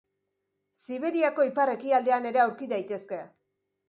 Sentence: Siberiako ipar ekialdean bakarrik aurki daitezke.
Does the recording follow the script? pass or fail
fail